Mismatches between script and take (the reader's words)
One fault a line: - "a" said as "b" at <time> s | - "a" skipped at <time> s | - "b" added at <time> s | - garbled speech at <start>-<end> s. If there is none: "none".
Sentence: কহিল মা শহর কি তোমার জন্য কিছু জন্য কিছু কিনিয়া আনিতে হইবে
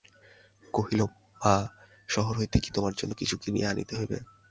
- "হইতে" added at 2.4 s
- "জন্য কিছু" skipped at 3.3 s